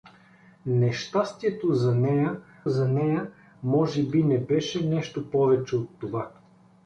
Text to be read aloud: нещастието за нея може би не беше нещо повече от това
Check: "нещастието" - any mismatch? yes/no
no